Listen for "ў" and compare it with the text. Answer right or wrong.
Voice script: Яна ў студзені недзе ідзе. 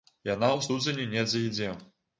right